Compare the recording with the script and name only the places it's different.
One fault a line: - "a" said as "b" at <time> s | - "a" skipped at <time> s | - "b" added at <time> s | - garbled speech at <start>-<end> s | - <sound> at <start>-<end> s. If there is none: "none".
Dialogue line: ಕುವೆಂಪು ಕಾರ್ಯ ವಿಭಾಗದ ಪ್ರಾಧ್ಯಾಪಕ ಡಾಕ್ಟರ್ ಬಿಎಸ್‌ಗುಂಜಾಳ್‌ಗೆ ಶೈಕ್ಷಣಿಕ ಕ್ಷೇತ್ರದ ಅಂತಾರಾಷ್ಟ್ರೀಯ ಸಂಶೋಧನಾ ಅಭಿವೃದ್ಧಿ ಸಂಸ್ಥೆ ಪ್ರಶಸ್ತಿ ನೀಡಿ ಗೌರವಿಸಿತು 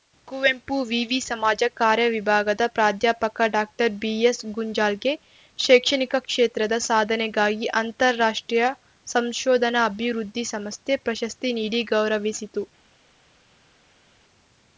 - "ವಿವಿ ಸಮಾಜ" added at 0.8 s
- "ಸಾಧನೆಗಾಗಿ" added at 6.9 s